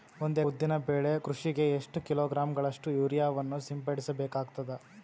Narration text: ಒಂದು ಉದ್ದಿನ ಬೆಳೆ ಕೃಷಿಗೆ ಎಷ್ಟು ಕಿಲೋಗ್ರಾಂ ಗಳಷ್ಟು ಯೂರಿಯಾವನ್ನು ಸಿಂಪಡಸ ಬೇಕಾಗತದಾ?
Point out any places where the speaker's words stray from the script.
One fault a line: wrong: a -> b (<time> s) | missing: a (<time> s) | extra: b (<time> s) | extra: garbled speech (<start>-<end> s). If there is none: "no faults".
no faults